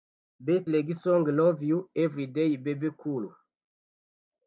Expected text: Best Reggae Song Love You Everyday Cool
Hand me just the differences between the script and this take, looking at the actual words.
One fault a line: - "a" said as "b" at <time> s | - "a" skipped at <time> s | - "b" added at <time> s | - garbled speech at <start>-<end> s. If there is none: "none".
- "Bebe" added at 2.6 s